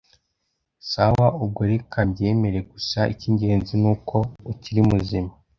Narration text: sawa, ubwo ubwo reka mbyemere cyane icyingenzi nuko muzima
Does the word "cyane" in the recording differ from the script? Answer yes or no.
yes